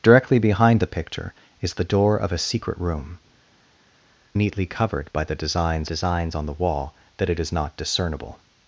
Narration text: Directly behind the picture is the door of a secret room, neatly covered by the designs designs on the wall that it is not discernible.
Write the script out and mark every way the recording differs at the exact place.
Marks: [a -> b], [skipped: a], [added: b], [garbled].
Directly behind the picture is the door of a secret room, neatly covered by the designs designs on the wall that it is not discernible.